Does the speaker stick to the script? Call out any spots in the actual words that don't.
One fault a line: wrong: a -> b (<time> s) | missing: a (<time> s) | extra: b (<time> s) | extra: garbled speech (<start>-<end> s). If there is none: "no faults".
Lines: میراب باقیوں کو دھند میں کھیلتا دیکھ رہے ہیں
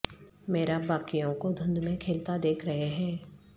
no faults